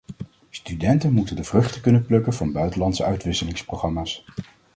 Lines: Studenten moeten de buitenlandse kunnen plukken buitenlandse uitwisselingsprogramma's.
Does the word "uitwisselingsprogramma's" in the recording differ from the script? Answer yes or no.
no